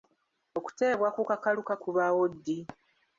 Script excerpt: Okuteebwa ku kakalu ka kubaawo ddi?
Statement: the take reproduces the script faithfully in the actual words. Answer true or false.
true